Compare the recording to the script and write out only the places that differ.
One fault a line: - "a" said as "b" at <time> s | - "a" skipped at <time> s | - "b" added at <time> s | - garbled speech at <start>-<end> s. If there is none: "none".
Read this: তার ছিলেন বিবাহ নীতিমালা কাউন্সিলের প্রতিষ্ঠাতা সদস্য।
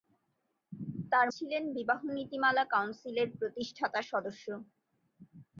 none